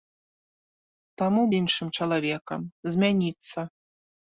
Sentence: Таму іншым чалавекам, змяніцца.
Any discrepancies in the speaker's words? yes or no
no